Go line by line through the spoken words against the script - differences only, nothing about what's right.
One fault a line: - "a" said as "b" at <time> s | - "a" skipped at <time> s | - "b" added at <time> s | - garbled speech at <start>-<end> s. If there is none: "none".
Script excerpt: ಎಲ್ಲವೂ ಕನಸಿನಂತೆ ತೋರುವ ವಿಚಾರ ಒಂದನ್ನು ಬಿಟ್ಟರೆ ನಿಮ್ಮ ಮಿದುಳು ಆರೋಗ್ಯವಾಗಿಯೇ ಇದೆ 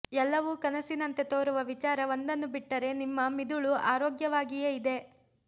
none